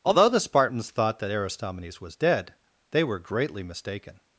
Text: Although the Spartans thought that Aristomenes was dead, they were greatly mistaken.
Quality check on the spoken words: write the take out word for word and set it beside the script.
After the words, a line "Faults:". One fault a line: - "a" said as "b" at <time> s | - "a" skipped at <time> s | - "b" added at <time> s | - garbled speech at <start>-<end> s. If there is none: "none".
Although the Spartans thought that Aristomenes was dead, they were greatly mistaken.
Faults:
none